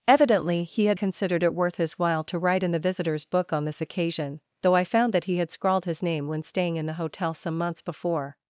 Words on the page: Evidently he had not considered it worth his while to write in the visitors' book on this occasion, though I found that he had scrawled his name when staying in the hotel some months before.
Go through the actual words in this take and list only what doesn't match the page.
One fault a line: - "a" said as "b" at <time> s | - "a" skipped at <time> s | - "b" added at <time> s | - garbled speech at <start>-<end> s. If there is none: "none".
- "not" skipped at 1.0 s